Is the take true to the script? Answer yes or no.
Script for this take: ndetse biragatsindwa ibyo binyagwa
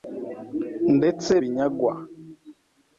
no